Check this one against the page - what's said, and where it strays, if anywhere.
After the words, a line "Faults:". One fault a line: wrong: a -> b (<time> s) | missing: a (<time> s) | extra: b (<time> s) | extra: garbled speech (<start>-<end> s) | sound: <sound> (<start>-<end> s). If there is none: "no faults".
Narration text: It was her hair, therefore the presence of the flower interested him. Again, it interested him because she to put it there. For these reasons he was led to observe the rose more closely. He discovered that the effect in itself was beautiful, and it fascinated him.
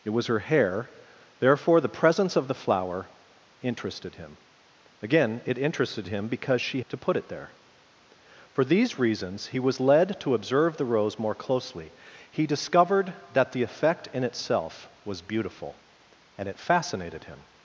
It was her hair, therefore the presence of the flower interested him. Again, it interested him because she to put it there. For these reasons he was led to observe the rose more closely. He discovered that the effect in itself was beautiful, and it fascinated him.
Faults:
no faults